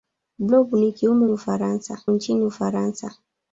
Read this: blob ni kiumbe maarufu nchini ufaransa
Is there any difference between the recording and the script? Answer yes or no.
yes